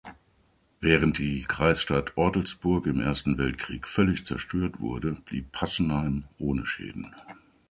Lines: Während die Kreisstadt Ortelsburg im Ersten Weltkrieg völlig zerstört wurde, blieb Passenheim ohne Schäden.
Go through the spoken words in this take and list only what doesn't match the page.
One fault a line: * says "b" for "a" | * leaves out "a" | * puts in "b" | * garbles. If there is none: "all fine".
all fine